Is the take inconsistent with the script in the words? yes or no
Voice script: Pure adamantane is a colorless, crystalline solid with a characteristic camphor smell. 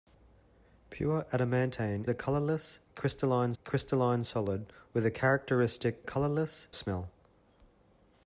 yes